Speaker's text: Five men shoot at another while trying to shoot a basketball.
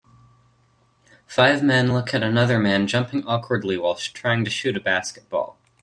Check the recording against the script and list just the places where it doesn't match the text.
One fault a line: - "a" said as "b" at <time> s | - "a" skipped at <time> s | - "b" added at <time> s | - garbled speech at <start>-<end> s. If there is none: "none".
- "shoot" said as "look" at 1.9 s
- "man jumping awkwardly" added at 2.6 s